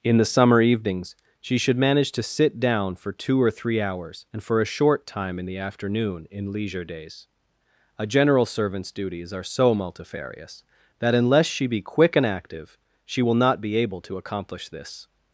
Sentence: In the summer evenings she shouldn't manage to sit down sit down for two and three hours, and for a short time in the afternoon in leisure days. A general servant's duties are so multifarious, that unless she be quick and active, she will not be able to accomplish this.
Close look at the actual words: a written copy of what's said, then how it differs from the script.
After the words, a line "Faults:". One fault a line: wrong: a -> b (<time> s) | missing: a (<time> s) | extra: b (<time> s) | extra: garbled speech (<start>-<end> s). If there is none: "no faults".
In the summer evenings she should manage to sit down for two or three hours, and for a short time in the afternoon in leisure days. A general servant's duties are so multifarious, that unless she be quick and active, she will not be able to accomplish this.
Faults:
wrong: shouldn't -> should (1.6 s)
missing: sit down (3.0 s)
wrong: and -> or (3.4 s)